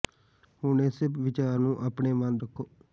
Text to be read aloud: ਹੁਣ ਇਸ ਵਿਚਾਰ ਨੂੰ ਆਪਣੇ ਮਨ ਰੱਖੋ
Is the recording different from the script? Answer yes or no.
no